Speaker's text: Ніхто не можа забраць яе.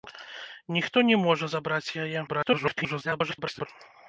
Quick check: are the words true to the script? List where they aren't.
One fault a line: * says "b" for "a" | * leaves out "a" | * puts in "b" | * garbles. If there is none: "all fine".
* garbles